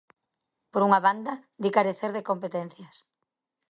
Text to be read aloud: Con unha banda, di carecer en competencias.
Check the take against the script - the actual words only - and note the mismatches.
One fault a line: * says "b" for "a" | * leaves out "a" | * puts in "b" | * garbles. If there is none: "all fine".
* says "Por" for "Con"
* says "de" for "en"